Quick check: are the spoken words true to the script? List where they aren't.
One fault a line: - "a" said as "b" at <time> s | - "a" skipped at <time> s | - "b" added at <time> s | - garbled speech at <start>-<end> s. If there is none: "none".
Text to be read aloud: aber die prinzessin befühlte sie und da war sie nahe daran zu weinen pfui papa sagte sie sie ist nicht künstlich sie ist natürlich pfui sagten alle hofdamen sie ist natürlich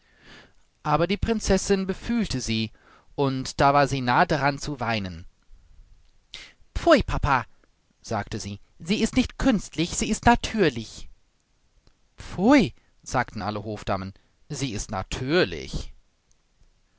none